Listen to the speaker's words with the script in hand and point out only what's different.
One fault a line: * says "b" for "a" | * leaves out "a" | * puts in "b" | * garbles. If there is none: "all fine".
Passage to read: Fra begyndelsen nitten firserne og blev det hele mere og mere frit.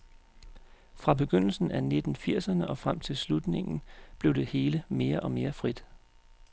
* puts in "af"
* puts in "frem til slutningen"